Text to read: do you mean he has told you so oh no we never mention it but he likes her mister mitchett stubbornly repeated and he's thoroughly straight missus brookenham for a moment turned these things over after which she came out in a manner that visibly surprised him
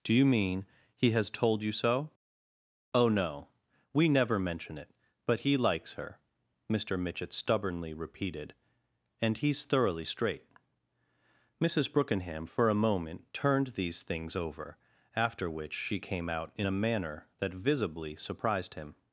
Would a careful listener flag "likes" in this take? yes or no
no